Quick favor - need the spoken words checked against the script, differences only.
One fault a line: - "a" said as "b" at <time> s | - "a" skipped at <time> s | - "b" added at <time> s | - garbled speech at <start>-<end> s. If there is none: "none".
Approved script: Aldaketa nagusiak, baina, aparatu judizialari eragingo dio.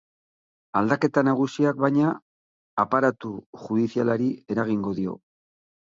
none